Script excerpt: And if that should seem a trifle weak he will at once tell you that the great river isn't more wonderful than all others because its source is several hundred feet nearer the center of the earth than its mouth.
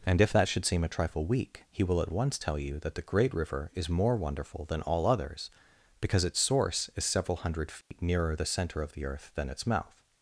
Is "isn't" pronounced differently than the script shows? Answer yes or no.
yes